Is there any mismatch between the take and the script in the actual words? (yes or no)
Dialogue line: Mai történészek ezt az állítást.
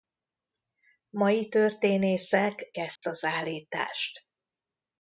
no